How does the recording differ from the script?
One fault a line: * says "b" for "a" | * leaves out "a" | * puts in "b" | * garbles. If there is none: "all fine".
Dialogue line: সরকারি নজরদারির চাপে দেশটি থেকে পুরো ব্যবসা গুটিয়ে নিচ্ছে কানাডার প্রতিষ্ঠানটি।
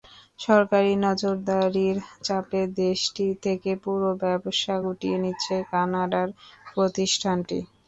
all fine